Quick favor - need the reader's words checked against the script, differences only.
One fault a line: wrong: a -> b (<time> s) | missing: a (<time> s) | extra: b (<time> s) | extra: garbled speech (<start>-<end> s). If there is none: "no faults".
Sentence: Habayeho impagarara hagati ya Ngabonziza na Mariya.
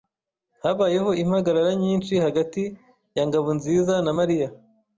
extra: nyinshi (1.8 s)